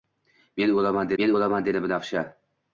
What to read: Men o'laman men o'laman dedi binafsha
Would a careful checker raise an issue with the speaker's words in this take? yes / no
no